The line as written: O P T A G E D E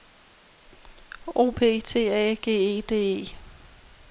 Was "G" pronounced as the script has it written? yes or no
yes